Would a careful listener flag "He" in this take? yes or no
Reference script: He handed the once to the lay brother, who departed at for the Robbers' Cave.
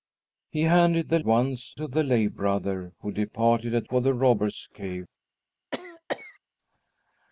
no